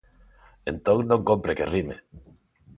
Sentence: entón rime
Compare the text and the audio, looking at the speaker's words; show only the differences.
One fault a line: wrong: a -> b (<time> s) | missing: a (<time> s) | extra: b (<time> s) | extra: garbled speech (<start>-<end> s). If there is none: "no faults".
extra: non cómpre que (1.1 s)